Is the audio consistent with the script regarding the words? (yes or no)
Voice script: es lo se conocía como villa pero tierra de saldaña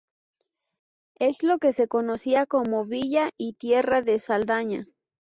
no